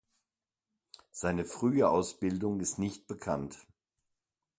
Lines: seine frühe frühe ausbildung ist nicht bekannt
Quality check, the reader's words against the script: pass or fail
fail